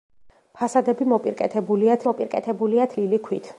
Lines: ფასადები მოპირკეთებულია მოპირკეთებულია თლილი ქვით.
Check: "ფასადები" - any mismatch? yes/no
no